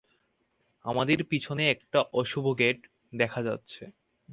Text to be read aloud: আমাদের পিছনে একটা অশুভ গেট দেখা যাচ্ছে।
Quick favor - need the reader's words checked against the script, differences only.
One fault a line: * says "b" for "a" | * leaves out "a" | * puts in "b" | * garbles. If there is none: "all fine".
all fine